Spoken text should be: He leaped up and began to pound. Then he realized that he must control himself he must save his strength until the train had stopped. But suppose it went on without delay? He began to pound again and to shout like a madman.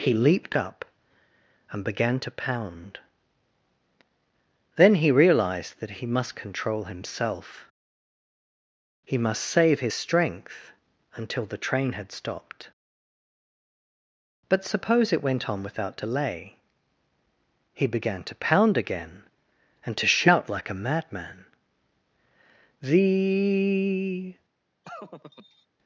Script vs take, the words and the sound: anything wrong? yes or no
yes